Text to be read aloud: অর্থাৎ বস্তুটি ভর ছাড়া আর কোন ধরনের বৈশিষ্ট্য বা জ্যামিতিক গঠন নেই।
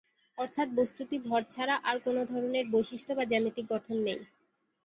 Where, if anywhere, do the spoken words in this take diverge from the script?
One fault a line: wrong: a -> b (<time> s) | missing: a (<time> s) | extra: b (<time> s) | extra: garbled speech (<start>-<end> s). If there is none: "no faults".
no faults